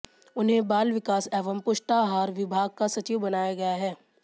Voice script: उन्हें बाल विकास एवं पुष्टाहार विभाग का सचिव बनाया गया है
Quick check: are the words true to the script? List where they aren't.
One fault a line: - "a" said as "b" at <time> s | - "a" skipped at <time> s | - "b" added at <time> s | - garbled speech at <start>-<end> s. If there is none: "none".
none